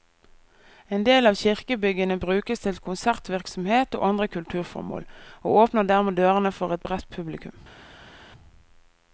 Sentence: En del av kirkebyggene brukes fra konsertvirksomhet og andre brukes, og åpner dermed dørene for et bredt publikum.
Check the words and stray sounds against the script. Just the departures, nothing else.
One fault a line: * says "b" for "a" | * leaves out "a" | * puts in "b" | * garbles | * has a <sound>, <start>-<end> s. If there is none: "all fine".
* says "til" for "fra"
* says "kulturformål" for "brukes"